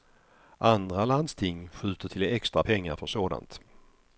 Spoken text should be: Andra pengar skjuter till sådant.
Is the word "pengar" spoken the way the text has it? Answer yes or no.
no